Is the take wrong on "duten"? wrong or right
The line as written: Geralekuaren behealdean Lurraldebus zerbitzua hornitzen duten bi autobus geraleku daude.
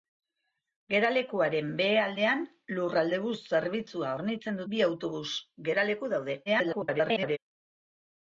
wrong